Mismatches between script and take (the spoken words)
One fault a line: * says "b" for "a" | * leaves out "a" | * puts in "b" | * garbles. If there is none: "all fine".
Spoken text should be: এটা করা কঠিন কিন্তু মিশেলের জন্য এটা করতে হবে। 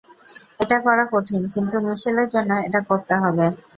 all fine